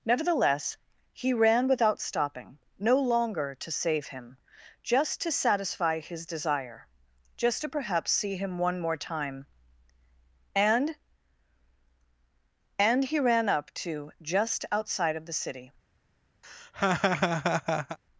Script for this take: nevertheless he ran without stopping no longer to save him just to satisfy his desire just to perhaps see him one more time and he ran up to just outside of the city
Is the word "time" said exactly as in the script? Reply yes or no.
yes